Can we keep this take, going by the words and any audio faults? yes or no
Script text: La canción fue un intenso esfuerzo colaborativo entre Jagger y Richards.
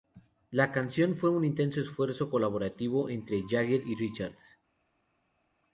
yes